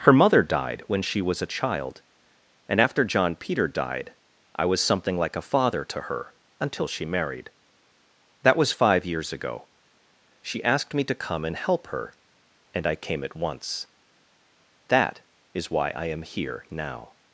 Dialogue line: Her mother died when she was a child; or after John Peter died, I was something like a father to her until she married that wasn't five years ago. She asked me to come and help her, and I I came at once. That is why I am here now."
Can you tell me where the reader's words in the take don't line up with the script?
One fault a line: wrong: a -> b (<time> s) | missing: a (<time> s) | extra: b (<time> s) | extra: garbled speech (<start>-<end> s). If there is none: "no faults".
wrong: or -> and (2.7 s)
wrong: wasn't -> was (8.6 s)
missing: I (13.0 s)